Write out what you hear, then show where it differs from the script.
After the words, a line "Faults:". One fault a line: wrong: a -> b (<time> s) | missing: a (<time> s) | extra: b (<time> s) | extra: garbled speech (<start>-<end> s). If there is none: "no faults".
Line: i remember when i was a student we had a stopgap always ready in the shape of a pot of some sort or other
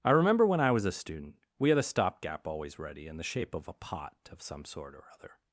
i remember when i was a student we had a stopgap always ready in the shape of a pot of some sort or other
Faults:
no faults